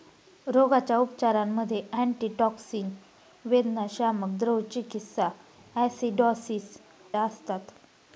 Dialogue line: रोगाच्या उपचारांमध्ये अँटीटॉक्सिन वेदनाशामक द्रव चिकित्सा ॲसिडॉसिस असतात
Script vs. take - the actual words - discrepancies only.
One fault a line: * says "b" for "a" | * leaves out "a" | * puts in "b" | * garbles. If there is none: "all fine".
all fine